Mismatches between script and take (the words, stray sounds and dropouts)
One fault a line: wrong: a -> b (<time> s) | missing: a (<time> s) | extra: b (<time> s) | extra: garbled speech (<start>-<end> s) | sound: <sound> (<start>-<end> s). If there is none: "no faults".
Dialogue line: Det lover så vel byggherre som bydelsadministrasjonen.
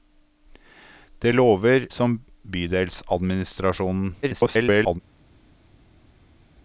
missing: så vel byggherre (1.9 s)
extra: garbled speech (4.2-5.0 s)